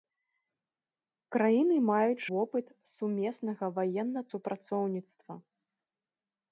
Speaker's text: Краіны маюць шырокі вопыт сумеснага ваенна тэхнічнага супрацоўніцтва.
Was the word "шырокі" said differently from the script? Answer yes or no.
yes